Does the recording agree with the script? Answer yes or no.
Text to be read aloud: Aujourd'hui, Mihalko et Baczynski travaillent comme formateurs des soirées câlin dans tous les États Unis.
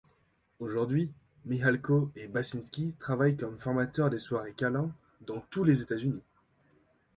yes